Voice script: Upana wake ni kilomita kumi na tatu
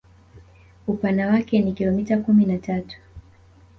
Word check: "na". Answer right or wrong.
right